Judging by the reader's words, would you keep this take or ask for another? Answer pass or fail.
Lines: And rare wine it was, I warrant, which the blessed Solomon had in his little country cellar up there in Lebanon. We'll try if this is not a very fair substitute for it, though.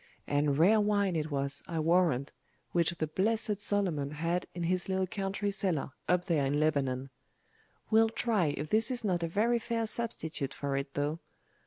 pass